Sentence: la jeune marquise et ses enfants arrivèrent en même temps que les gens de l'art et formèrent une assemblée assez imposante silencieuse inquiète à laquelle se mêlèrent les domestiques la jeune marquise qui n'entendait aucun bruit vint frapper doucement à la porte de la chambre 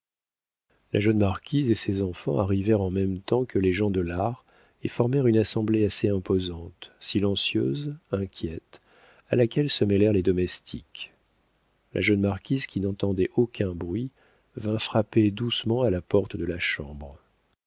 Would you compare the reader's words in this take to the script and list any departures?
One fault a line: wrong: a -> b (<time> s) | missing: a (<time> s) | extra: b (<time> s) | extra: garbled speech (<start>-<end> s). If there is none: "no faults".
no faults